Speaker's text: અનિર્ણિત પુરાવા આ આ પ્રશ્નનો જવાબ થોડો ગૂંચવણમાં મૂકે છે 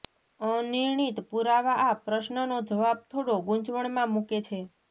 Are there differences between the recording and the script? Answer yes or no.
yes